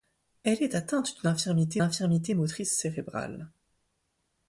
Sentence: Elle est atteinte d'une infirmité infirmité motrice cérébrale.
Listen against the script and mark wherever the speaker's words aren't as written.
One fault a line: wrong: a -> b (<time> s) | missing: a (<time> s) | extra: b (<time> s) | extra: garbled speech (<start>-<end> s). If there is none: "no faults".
no faults